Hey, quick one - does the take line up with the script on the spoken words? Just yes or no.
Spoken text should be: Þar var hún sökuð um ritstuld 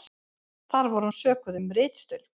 yes